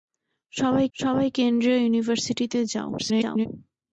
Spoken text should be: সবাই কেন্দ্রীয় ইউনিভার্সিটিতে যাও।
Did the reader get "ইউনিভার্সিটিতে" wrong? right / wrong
right